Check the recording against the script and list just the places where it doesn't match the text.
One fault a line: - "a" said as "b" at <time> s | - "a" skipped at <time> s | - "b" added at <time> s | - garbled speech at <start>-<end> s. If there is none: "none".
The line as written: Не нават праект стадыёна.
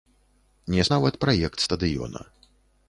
none